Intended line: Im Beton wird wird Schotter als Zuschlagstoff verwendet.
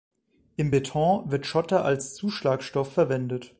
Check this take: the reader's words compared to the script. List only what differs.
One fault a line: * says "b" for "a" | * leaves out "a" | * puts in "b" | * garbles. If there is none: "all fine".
* leaves out "wird"